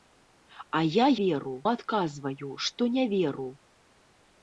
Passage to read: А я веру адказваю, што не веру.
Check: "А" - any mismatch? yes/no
no